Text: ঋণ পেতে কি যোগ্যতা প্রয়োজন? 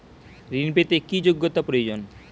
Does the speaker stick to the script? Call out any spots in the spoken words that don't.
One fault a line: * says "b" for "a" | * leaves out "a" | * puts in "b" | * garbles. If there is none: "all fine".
all fine